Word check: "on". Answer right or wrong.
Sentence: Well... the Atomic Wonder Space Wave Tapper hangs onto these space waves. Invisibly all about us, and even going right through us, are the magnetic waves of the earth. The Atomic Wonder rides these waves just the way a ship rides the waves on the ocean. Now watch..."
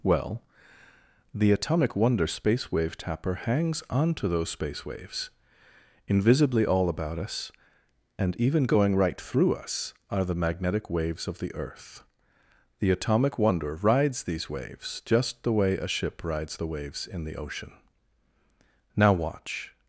wrong